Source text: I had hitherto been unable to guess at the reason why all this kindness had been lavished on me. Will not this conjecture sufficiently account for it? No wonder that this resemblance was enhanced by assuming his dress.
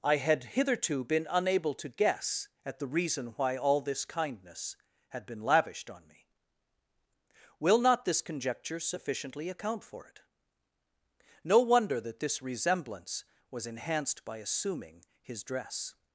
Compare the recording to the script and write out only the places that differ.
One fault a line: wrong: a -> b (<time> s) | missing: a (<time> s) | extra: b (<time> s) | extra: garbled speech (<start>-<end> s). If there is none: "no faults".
no faults